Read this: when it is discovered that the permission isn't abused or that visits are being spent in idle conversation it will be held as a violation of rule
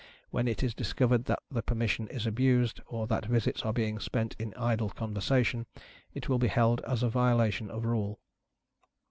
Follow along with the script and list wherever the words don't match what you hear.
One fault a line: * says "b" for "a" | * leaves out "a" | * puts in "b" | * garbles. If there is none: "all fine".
* says "is" for "isn't"